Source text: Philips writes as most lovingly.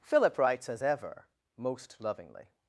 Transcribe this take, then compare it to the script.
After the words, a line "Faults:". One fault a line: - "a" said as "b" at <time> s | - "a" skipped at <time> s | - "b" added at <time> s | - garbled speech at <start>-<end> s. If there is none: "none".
Philip writes as ever most lovingly.
Faults:
- "Philips" said as "Philip" at 0.0 s
- "ever" added at 0.8 s